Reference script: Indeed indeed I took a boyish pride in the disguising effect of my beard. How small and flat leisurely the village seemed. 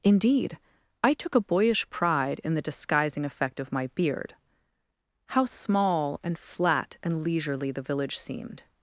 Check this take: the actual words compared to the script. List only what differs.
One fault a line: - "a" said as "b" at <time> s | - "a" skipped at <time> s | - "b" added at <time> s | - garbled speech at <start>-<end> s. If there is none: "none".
- "indeed" skipped at 0.6 s
- "and" added at 7.0 s